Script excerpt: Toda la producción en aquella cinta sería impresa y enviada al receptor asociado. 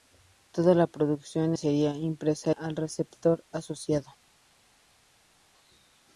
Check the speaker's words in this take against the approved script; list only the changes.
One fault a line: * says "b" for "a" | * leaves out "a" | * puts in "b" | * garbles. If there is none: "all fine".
* leaves out "en aquella cinta"
* leaves out "y enviada"